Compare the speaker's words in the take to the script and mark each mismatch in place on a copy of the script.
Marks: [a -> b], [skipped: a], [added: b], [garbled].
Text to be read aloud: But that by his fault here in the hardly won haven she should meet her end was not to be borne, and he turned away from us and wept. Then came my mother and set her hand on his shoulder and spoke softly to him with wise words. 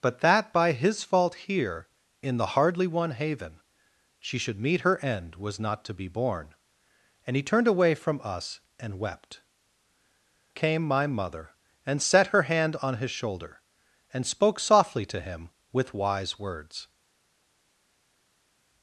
But that by his fault here in the hardly won haven she should meet her end was not to be borne, and he turned away from us and wept. [skipped: Then] came my mother and set her hand on his shoulder and spoke softly to him with wise words.